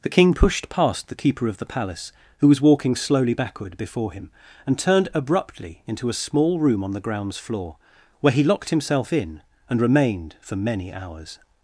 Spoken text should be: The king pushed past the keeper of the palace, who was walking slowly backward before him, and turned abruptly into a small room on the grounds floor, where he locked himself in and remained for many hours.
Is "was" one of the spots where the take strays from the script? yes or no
no